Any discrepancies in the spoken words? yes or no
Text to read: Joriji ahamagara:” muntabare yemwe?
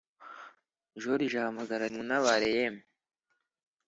no